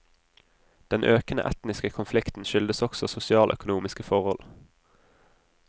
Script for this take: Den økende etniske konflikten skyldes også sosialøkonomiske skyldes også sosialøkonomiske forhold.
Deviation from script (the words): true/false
true